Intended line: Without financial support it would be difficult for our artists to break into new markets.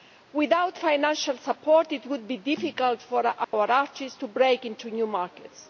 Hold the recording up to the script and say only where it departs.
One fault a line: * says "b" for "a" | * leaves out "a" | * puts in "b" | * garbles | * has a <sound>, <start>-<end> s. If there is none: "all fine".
* has a dropout, 3.4-3.5 s